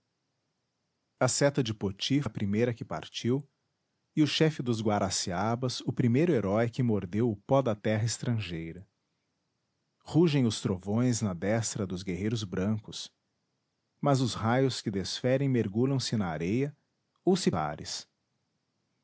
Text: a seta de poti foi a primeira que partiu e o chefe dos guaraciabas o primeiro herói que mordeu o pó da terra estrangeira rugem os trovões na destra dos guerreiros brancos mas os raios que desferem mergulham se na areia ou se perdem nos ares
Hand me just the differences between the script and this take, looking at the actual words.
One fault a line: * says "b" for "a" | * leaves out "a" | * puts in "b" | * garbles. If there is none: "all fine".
* leaves out "foi"
* leaves out "perdem nos"